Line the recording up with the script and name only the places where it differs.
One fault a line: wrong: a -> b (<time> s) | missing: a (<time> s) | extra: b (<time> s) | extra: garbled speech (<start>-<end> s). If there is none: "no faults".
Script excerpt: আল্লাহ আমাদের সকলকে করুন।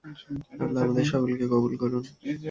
extra: কবুল (1.5 s)